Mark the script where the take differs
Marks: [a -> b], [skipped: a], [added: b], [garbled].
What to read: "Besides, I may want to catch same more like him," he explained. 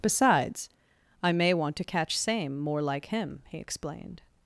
"Besides, I may want to catch same more like him," he explained.